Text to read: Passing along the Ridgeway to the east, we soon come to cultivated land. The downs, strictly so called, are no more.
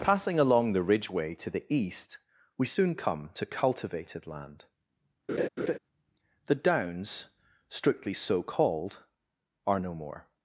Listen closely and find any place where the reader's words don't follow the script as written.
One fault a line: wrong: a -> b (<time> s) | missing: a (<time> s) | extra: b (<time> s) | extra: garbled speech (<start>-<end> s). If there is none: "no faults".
no faults